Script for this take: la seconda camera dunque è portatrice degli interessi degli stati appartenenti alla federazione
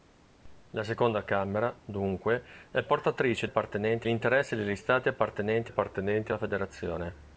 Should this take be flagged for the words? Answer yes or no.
yes